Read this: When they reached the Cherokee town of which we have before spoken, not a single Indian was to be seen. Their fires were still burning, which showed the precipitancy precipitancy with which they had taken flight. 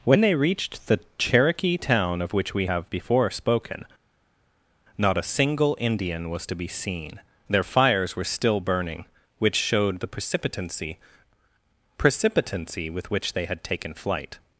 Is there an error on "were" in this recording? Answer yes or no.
no